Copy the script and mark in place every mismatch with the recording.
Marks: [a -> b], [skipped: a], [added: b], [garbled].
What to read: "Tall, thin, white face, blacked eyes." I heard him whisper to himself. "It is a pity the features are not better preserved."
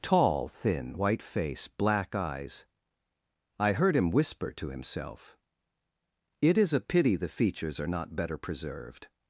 "Tall, thin, white face, [blacked -> black] eyes." I heard him whisper to himself. "It is a pity the features are not better preserved."